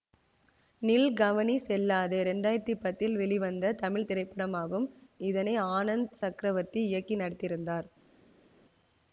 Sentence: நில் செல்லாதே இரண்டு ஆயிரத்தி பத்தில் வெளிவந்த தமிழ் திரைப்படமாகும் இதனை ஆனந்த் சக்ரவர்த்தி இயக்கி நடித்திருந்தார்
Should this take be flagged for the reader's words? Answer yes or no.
yes